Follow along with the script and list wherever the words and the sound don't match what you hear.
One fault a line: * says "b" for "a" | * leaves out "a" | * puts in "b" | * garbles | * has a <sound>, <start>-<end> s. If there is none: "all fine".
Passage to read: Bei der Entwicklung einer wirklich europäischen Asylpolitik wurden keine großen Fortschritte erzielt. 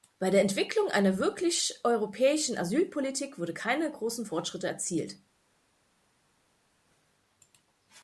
all fine